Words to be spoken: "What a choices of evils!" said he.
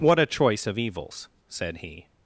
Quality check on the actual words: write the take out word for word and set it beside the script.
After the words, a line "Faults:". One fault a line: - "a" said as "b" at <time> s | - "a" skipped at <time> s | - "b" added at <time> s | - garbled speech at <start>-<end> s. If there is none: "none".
"What a choice of evils!" said he.
Faults:
- "choices" said as "choice" at 0.2 s